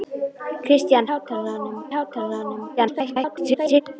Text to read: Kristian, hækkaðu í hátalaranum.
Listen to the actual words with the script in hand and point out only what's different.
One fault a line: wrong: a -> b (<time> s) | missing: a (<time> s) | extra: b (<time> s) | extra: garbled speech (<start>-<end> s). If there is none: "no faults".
wrong: hækkaðu -> hátalaranum (1.1 s)
extra: garbled speech (2.8-3.8 s)